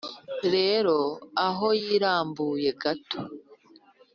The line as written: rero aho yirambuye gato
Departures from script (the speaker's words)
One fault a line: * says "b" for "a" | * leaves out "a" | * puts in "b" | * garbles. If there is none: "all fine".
all fine